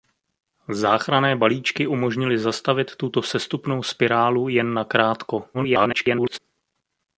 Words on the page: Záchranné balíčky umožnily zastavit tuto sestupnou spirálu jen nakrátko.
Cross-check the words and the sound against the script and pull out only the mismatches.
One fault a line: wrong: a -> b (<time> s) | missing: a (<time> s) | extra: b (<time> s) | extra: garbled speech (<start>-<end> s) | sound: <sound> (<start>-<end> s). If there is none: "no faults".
extra: garbled speech (5.5-6.4 s)